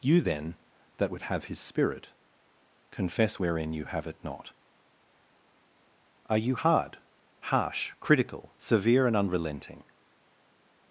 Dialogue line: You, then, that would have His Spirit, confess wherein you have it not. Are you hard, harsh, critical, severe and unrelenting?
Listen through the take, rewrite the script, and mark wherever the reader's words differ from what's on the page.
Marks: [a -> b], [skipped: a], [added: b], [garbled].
You, then, that would have His Spirit, confess wherein you have it not. Are you hard, harsh, critical, severe and unrelenting?